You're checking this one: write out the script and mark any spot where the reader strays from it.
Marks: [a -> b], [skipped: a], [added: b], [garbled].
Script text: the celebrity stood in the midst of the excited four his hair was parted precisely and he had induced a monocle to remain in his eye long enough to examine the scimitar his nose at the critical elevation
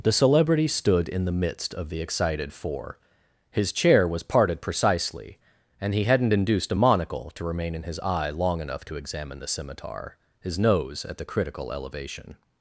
the celebrity stood in the midst of the excited four his [hair -> chair] was parted precisely and he [had -> hadn't] induced a monocle to remain in his eye long enough to examine the scimitar his nose at the critical elevation